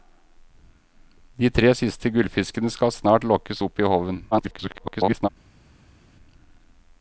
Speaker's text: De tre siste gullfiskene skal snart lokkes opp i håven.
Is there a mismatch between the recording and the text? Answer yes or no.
yes